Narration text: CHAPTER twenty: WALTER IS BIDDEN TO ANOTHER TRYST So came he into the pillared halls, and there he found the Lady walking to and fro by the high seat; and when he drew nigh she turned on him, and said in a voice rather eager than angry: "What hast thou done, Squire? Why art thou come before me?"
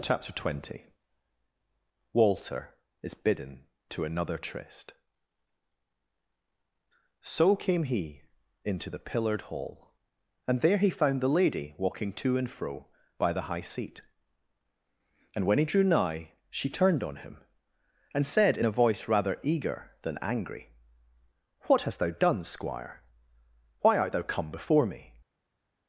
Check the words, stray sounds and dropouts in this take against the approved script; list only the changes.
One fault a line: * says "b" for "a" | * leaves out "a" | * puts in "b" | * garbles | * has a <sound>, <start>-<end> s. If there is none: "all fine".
* says "hall" for "halls"